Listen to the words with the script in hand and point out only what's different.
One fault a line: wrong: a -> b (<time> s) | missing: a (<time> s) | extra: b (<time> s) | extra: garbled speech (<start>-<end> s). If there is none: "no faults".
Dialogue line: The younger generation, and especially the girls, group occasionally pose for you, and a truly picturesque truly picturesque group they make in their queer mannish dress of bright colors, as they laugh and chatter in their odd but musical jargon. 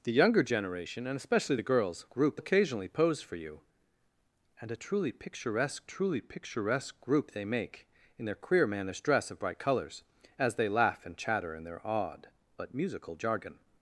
no faults